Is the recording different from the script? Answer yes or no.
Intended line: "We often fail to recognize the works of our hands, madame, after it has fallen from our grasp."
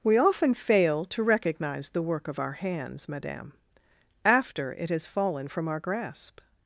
yes